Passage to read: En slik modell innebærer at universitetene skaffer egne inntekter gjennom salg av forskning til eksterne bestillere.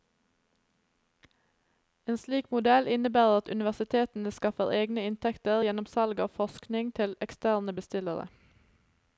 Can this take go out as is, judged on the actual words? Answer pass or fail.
pass